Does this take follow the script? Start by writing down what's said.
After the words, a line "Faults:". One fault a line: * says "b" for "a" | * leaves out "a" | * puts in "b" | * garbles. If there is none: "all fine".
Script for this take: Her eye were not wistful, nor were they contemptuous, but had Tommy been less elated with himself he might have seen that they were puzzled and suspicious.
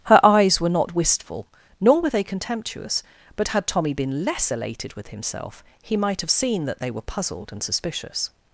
Her eyes were not wistful, nor were they contemptuous, but had Tommy been less elated with himself he might have seen that they were puzzled and suspicious.
Faults:
* says "eyes" for "eye"